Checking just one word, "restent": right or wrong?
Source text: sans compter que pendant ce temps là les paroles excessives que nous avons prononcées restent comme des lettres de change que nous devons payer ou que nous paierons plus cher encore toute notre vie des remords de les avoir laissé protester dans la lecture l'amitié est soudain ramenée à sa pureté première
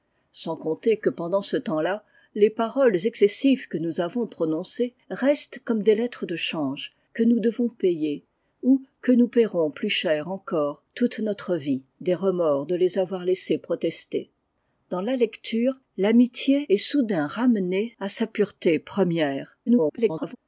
right